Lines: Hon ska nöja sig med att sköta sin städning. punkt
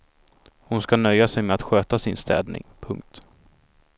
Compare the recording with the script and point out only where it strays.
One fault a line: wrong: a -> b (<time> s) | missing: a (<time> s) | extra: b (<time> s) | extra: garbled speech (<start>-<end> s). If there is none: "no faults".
no faults